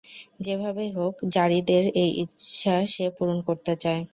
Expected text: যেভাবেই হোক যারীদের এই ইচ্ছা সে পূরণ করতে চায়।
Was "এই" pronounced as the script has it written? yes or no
yes